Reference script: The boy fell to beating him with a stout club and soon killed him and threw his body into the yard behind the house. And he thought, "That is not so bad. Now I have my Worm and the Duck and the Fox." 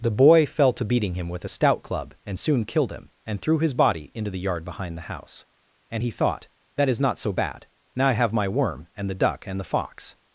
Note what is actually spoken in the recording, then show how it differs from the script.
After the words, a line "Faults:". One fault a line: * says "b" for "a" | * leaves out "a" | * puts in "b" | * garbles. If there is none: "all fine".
The boy fell to beating him with a stout club and soon killed him and threw his body into the yard behind the house. And he thought, "That is not so bad. Now I have my Worm and the Duck and the Fox."
Faults:
all fine